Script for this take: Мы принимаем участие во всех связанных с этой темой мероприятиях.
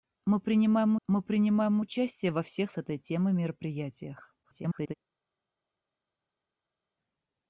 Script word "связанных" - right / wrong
wrong